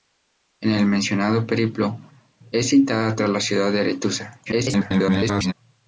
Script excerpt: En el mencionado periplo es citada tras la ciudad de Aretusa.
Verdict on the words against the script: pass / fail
fail